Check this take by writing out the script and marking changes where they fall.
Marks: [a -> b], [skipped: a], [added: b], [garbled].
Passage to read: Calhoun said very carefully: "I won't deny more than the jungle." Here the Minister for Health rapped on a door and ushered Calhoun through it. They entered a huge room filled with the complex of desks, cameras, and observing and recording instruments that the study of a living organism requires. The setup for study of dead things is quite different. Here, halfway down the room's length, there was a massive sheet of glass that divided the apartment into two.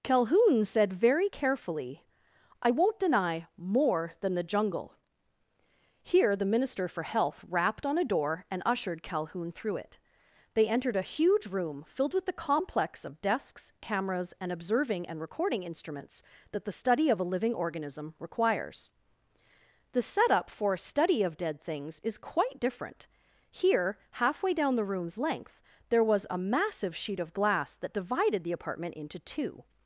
Calhoun said very carefully: "I won't deny more than the jungle." Here the Minister for Health rapped on a door and ushered Calhoun through it. They entered a huge room filled with the complex of desks, cameras, and observing and recording instruments that the study of a living organism requires. The setup for [added: a] study of dead things is quite different. Here, halfway down the room's length, there was a massive sheet of glass that divided the apartment into two.